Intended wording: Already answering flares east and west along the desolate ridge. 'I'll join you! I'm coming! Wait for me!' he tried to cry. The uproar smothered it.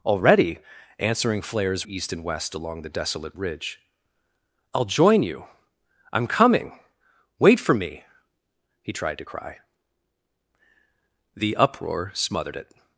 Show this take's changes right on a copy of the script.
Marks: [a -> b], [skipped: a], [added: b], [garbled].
Already answering flares east and west along the desolate ridge. 'I'll join you! I'm coming! Wait for me!' he tried to cry. The uproar smothered it.